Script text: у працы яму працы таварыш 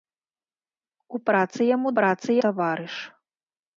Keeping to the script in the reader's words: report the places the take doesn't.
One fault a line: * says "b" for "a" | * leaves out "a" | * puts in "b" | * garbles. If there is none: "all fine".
all fine